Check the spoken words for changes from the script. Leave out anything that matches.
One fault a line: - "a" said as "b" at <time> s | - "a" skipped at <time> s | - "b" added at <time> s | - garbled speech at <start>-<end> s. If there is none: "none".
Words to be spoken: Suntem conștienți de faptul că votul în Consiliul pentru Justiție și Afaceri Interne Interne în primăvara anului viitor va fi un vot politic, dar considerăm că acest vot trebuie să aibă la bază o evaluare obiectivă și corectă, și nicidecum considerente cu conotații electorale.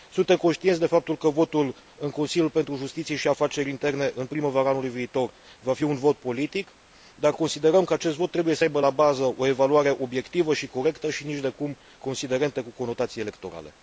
- "Interne" skipped at 4.1 s